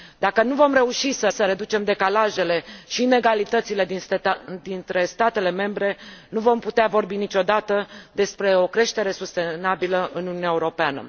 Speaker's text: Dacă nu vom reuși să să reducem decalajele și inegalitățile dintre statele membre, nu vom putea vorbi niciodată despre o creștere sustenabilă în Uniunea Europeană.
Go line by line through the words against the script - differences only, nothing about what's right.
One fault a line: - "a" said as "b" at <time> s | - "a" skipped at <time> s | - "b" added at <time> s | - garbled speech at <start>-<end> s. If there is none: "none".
none